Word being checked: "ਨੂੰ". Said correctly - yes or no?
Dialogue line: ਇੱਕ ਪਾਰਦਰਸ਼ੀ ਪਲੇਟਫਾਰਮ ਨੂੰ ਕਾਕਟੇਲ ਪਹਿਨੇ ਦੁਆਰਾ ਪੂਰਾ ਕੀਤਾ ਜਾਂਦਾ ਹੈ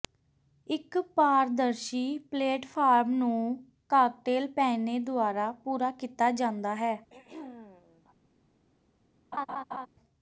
yes